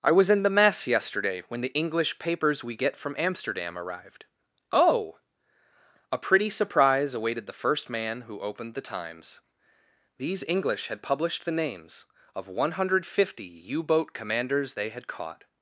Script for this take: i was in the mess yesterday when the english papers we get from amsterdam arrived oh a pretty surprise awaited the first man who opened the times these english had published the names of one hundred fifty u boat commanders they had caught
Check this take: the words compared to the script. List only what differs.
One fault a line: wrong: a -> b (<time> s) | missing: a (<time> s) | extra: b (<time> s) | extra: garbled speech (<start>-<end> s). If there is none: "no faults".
no faults